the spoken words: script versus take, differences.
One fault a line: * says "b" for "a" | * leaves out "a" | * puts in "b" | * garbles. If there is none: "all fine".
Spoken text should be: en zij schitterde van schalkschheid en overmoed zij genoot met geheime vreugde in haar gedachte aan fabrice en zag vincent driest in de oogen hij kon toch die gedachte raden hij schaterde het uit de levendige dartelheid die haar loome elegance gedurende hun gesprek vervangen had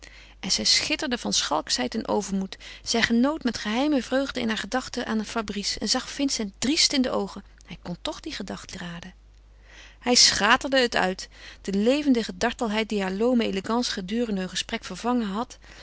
all fine